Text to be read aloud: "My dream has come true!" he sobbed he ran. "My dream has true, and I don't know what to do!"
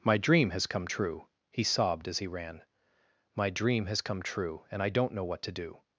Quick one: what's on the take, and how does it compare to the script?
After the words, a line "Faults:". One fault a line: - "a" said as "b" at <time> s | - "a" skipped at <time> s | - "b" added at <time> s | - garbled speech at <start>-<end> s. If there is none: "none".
"My dream has come true!" he sobbed as he ran. "My dream has come true, and I don't know what to do!"
Faults:
- "as" added at 2.1 s
- "come" added at 4.0 s